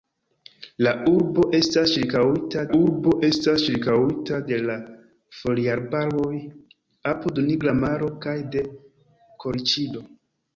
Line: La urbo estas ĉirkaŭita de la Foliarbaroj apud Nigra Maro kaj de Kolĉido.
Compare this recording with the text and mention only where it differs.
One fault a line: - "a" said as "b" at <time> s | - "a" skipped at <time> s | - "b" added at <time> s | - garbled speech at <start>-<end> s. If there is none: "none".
- "urbo estas ĉirkaŭita" added at 2.8 s